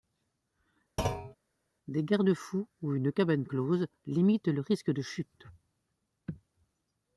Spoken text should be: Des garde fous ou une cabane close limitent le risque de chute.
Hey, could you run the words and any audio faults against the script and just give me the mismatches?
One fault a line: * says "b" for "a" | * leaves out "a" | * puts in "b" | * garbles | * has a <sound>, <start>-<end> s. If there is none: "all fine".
* has a thud, 1.0-1.4 s